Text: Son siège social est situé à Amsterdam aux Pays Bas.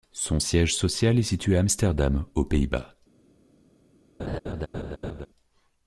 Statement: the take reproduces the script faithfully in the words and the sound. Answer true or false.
false